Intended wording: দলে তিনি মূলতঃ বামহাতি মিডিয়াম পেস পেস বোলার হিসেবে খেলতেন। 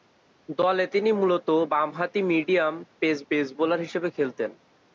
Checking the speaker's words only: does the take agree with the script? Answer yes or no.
yes